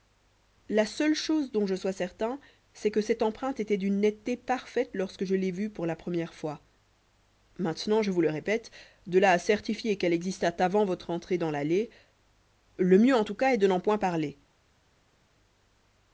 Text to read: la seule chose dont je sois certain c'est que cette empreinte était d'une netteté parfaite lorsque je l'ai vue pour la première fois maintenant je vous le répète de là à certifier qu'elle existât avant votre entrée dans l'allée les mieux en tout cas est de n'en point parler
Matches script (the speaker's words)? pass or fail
fail